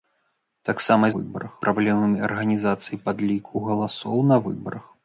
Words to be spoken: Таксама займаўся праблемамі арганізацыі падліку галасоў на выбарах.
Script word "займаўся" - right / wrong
wrong